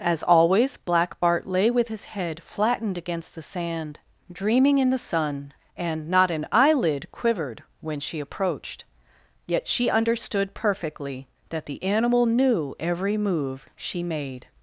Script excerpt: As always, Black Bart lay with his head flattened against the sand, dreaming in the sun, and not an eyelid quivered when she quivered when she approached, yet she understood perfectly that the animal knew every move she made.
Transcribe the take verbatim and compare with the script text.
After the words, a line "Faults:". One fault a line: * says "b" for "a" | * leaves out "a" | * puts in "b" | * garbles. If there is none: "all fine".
As always, Black Bart lay with his head flattened against the sand, dreaming in the sun, and not an eyelid quivered when she approached, yet she understood perfectly that the animal knew every move she made.
Faults:
* leaves out "quivered when she"